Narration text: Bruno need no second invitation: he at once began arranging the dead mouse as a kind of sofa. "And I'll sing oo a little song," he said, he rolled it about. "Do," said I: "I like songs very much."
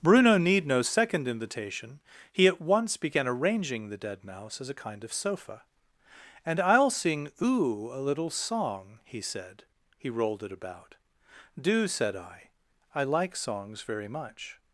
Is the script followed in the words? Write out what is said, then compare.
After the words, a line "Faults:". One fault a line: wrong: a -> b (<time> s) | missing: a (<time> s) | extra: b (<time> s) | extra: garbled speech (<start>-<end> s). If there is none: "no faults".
Bruno need no second invitation: he at once began arranging the dead mouse as a kind of sofa. "And I'll sing oo a little song," he said, he rolled it about. "Do," said I: "I like songs very much."
Faults:
no faults